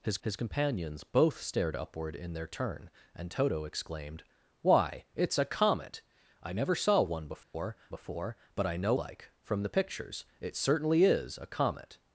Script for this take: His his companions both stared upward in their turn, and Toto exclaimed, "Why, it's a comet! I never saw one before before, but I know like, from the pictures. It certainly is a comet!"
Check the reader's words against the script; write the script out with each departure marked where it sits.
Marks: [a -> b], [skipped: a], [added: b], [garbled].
His his companions both stared upward in their turn, and Toto exclaimed, "Why, it's a comet! I never saw one before before, but I know like, from the pictures. It certainly is a comet!"